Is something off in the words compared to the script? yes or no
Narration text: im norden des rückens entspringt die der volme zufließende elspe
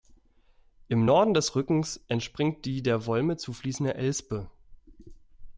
no